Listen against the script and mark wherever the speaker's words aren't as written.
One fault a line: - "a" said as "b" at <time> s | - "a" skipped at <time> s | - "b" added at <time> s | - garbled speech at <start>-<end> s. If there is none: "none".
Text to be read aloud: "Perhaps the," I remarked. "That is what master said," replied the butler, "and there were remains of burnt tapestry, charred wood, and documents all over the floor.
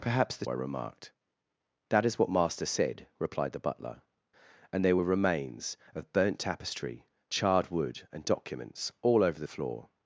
none